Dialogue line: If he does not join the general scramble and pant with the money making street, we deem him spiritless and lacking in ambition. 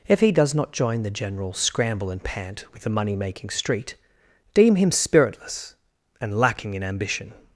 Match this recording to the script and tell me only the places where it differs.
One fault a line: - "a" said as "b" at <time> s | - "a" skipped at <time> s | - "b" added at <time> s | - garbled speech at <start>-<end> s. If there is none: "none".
- "we" skipped at 4.0 s